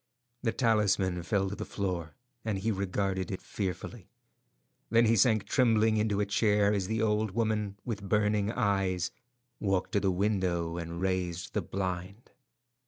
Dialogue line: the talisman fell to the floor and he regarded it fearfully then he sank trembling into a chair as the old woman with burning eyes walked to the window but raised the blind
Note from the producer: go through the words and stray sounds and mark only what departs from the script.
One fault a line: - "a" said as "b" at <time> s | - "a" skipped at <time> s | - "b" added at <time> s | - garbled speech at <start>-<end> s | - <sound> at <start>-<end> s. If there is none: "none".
- "but" said as "and" at 10.8 s